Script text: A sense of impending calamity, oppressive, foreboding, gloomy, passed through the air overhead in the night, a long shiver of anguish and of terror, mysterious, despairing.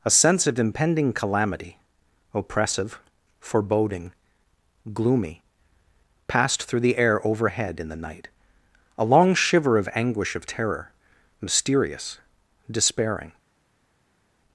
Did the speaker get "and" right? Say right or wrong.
wrong